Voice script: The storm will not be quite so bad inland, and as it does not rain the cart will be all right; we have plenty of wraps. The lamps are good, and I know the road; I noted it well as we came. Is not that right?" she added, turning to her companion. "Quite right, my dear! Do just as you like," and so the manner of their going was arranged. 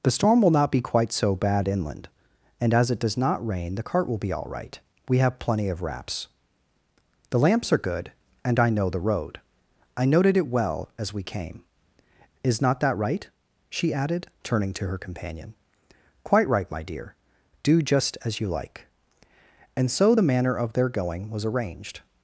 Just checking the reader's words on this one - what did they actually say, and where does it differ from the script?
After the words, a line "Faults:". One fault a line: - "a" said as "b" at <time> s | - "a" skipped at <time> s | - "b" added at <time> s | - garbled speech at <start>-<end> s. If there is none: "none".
The storm will not be quite so bad inland, and as it does not rain the cart will be all right; we have plenty of wraps. The lamps are good, and I know the road; I noted it well as we came. Is not that right?" she added, turning to her companion. "Quite right, my dear! Do just as you like," and so the manner of their going was arranged.
Faults:
none